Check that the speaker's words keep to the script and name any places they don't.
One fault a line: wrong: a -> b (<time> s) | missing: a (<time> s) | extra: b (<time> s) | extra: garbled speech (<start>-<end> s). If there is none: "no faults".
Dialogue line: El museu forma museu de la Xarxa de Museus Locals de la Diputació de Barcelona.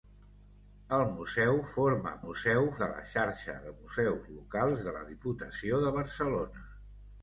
no faults